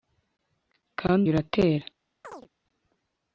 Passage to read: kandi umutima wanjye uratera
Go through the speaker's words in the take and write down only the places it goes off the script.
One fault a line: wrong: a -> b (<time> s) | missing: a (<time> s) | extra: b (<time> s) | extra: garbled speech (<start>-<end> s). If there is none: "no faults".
missing: umutima wanjye (1.2 s)